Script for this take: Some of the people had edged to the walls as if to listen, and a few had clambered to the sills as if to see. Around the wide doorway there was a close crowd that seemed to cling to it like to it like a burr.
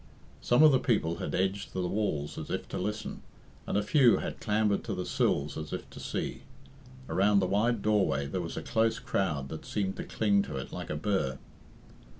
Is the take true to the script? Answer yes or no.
no